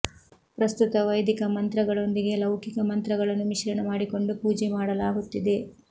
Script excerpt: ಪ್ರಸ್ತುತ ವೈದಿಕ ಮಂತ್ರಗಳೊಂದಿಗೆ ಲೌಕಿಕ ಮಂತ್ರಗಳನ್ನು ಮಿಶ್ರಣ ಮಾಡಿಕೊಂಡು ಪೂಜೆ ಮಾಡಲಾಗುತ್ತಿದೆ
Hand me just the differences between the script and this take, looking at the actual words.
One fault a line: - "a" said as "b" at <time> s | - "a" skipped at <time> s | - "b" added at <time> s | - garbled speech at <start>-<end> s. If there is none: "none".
none